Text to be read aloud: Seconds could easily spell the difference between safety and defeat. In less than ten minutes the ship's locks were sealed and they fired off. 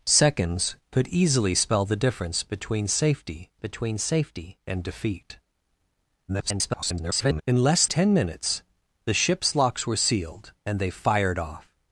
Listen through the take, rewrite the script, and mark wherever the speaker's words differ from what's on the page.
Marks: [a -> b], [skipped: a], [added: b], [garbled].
Seconds could easily spell the difference between safety [added: between safety] and defeat. [garbled] In less [skipped: than] ten minutes the ship's locks were sealed and they fired off.